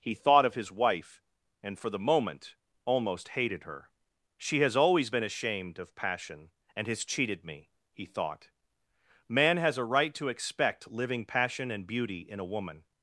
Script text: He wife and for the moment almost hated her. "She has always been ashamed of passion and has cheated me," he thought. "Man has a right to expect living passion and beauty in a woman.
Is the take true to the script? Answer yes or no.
no